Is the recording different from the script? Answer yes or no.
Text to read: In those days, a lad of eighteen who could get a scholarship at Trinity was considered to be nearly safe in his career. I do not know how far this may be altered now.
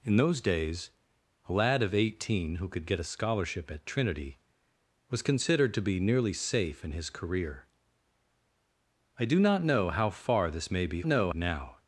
yes